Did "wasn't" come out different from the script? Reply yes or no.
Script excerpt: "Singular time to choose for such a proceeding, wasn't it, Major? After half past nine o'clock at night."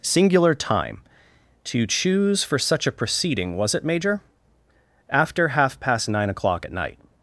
yes